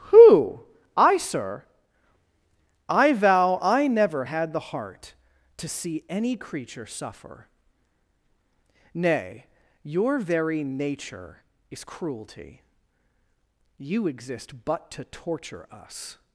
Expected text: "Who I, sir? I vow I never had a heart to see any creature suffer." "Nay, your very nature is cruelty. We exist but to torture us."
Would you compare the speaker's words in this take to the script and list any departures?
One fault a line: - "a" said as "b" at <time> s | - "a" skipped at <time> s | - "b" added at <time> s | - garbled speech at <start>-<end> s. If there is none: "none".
- "a" said as "the" at 4.5 s
- "We" said as "You" at 13.8 s